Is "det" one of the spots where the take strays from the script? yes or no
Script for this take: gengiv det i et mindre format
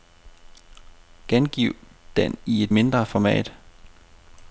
yes